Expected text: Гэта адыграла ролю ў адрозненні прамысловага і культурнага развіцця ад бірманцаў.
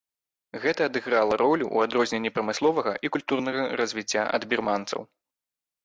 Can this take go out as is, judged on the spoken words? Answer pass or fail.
pass